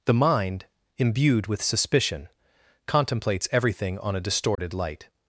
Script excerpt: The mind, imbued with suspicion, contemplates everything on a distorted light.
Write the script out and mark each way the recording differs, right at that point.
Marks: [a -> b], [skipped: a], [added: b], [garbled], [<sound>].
The mind, imbued with suspicion, contemplates everything on a distorted [dropout] light.